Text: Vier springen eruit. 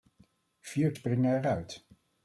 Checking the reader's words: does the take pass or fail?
pass